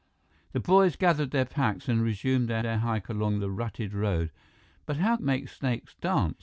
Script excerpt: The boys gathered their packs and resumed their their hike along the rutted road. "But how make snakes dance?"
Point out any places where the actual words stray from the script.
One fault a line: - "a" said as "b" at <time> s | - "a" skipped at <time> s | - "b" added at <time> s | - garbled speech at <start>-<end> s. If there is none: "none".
none